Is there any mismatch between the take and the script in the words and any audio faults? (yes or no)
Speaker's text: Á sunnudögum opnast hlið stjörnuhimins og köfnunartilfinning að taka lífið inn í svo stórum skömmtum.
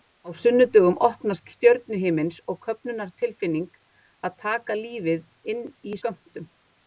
yes